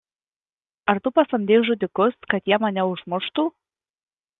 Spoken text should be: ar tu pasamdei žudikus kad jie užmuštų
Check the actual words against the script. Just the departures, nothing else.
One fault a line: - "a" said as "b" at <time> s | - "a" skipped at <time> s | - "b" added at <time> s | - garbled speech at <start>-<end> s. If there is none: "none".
- "mane" added at 2.7 s